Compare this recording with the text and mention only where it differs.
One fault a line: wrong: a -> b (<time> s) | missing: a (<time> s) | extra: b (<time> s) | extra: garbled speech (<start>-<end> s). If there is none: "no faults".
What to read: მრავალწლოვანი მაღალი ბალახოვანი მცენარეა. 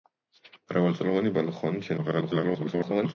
missing: მაღალი (1.3 s)
extra: garbled speech (2.0-3.1 s)